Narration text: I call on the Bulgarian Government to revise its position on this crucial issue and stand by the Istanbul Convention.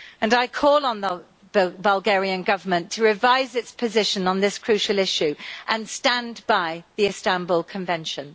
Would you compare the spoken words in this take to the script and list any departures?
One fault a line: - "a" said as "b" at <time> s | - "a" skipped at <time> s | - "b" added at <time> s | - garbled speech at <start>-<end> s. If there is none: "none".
none